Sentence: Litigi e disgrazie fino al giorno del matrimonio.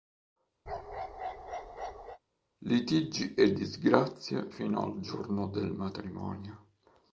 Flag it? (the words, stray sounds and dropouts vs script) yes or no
yes